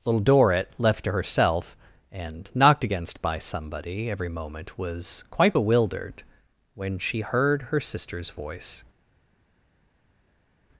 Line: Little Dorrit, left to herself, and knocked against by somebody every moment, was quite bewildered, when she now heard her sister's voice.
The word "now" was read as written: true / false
false